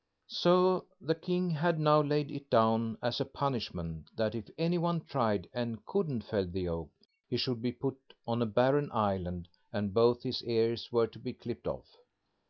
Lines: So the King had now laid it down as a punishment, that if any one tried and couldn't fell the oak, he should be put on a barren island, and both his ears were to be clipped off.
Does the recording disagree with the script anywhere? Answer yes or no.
no